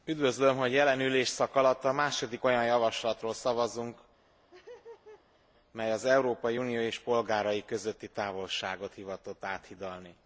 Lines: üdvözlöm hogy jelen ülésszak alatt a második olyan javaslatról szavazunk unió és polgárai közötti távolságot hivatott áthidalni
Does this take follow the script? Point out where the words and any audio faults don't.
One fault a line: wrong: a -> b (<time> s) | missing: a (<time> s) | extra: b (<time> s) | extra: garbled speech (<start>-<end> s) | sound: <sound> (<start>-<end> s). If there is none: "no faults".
sound: laugh (4.2-5.5 s)
extra: mely az európai (5.7 s)